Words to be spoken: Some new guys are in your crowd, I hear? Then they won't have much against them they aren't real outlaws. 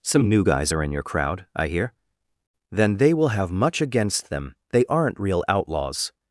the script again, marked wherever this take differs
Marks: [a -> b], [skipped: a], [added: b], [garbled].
Some new guys are in your crowd, I hear? Then they [won't -> will] have much against them they aren't real outlaws.